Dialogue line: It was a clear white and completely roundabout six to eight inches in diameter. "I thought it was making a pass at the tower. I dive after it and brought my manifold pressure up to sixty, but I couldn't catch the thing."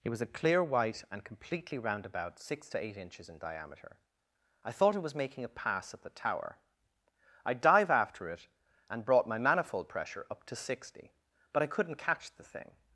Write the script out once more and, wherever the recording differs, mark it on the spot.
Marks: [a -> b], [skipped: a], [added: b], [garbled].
It was a clear white and completely roundabout six to eight inches in diameter. "I thought it was making a pass at the tower. I dive after it and brought my manifold pressure up to sixty, but I couldn't catch the thing."